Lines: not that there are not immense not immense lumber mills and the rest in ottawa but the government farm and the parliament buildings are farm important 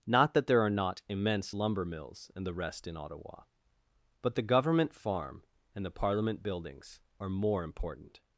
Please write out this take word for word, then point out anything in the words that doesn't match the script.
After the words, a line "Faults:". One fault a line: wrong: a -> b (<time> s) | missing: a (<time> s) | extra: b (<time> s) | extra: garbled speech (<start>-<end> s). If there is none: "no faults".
not that there are not immense lumber mills and the rest in ottawa but the government farm and the parliament buildings are more important
Faults:
missing: not immense (1.6 s)
wrong: farm -> more (7.3 s)